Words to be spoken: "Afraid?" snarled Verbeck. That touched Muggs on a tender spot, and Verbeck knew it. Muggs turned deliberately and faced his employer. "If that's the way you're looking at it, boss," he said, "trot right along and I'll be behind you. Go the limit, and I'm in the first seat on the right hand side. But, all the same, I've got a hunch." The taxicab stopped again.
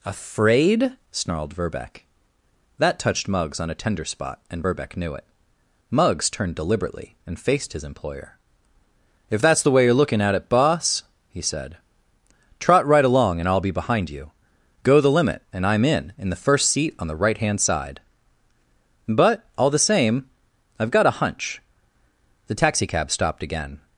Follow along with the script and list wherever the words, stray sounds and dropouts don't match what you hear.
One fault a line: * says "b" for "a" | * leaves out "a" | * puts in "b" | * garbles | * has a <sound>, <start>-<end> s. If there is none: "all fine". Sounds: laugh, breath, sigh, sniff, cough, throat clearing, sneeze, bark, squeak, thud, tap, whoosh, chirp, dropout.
* puts in "in"